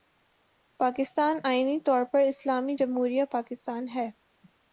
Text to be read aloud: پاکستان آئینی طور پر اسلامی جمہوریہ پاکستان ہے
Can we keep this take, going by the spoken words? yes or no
yes